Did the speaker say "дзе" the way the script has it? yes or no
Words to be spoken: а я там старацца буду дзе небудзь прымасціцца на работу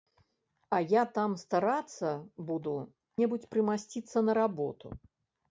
no